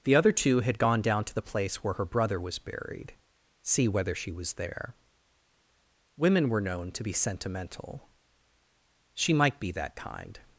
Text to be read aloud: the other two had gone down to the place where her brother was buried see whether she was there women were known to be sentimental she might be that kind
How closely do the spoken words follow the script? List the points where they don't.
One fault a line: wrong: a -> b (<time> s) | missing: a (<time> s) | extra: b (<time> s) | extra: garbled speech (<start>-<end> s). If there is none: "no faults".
no faults